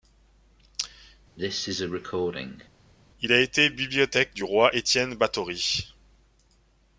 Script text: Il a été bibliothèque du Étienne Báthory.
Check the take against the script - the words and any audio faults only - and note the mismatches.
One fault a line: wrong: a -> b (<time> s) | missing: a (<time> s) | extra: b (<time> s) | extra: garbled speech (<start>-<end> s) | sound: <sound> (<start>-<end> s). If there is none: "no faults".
sound: cough (1.4-2.7 s)
extra: roi (4.4 s)